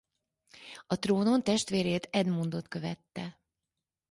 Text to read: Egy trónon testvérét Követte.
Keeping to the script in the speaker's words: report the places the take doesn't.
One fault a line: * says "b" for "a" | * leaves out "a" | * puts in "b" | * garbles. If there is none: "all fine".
* says "A" for "Egy"
* puts in "Edmundot"